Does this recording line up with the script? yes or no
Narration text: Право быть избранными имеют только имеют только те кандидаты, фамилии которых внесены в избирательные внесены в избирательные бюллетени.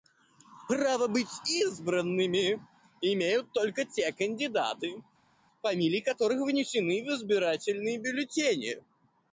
no